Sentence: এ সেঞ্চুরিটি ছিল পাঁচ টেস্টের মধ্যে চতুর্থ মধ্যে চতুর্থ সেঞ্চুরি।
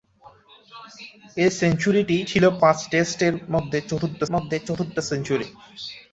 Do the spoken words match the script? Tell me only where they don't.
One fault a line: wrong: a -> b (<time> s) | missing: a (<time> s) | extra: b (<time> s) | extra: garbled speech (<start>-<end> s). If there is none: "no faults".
no faults